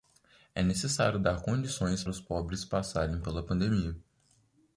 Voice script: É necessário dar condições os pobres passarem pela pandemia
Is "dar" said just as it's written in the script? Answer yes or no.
yes